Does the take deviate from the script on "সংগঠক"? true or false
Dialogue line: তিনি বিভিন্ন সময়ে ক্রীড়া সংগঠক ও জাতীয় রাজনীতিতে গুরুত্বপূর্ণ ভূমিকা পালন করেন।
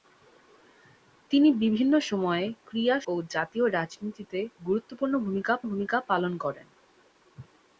true